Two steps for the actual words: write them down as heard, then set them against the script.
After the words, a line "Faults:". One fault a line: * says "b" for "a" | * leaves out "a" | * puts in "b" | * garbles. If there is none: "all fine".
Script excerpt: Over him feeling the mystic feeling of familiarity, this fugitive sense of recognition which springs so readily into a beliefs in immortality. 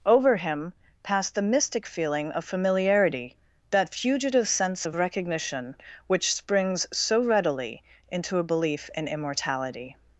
Over him passed the mystic feeling of familiarity, that fugitive sense of recognition which springs so readily into a belief in immortality.
Faults:
* says "passed" for "feeling"
* says "that" for "this"
* says "belief" for "beliefs"